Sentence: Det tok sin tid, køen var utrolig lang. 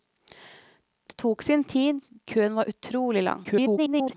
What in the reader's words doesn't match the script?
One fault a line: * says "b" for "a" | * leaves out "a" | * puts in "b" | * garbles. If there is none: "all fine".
* garbles